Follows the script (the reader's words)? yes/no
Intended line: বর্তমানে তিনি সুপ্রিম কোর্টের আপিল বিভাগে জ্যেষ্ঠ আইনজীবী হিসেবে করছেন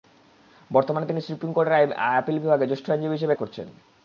yes